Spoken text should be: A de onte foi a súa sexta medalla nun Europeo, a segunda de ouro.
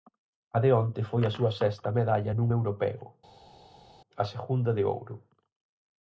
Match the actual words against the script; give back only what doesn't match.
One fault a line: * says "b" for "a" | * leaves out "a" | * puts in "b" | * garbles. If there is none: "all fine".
all fine